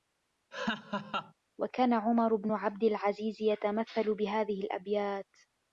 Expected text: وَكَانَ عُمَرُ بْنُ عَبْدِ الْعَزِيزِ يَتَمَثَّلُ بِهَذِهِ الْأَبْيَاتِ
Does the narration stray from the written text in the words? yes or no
no